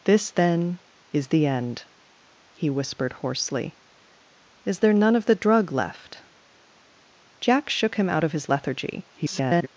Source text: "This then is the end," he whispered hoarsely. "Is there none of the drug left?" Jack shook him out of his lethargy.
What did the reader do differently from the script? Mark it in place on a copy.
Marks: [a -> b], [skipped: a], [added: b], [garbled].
"This then is the end," he whispered hoarsely. "Is there none of the drug left?" Jack shook him out of his lethargy. [garbled]